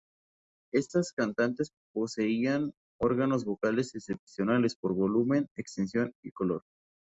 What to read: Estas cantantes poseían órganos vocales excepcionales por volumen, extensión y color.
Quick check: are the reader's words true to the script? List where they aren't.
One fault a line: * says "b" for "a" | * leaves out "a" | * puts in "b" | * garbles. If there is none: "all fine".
all fine